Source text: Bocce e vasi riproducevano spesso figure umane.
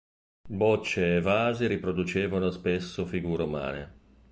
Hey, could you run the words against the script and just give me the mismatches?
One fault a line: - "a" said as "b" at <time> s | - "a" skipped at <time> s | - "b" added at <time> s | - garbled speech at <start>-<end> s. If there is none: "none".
none